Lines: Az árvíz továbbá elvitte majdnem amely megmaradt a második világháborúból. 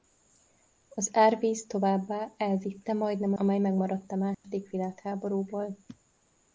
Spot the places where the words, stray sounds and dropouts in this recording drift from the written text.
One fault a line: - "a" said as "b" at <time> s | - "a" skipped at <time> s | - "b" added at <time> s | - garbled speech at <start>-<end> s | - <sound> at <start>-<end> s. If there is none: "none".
- dropout at 4.3-4.4 s